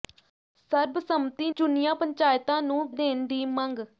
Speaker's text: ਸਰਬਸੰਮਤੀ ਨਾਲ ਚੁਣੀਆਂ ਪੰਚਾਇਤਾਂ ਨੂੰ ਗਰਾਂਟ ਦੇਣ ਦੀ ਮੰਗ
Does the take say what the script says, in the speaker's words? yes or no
no